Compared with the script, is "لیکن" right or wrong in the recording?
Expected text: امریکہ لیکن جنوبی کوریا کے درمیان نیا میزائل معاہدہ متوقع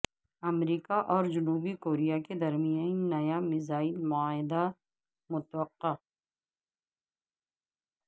wrong